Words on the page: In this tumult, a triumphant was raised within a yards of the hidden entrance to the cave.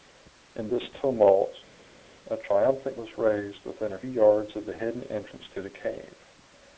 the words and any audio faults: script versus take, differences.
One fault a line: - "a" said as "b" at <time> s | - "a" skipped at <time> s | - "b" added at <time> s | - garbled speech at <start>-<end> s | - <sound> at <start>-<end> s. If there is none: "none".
none